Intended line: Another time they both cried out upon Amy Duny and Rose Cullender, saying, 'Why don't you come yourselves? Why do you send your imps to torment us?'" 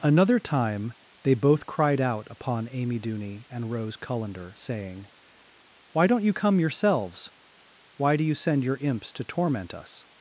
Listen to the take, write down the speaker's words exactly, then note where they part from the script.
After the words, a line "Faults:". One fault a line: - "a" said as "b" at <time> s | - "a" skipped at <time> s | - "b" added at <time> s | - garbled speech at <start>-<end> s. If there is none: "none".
Another time they both cried out upon Amy Duny and Rose Cullender, saying, 'Why don't you come yourselves? Why do you send your imps to torment us?'"
Faults:
none